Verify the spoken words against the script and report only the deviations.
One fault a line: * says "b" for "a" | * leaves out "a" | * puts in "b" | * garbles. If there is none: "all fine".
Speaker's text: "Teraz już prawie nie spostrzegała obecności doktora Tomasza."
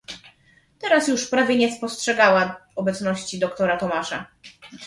all fine